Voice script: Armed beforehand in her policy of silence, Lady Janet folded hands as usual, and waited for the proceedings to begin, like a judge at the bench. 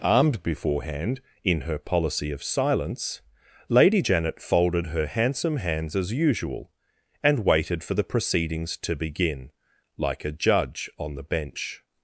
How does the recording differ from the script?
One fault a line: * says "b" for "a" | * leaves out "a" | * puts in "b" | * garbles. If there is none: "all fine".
* puts in "her handsome"
* says "on" for "at"